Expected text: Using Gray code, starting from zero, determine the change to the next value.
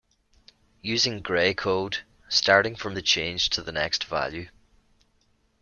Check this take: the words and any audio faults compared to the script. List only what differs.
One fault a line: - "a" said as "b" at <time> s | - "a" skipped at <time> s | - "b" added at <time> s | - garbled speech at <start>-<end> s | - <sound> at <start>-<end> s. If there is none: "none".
- "zero determine" skipped at 3.0 s